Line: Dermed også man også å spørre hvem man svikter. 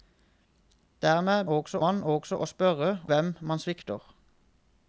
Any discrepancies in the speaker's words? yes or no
no